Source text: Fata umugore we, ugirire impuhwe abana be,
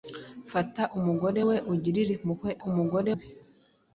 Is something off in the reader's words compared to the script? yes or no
yes